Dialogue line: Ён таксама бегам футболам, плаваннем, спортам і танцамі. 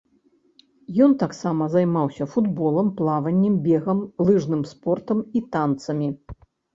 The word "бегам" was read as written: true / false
false